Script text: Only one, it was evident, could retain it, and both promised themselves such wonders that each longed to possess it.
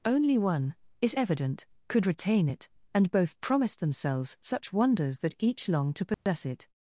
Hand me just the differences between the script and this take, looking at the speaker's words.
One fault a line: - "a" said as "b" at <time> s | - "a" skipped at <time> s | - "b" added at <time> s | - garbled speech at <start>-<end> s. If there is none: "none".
- "was" skipped at 1.1 s